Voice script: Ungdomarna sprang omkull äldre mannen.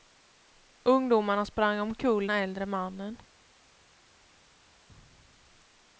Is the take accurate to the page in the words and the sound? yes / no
yes